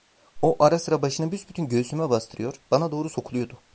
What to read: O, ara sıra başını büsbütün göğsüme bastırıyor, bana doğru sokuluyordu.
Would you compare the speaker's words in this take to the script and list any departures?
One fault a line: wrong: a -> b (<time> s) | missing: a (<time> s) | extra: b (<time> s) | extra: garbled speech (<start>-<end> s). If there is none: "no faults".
no faults